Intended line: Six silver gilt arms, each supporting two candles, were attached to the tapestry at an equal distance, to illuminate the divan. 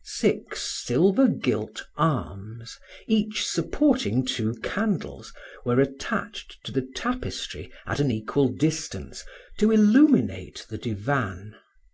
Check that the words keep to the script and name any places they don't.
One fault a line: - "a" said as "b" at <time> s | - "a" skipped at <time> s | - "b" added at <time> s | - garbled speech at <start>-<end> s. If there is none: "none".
none